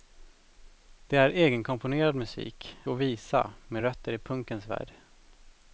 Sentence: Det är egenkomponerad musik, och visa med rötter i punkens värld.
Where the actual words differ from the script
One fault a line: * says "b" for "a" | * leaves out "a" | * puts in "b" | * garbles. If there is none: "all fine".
all fine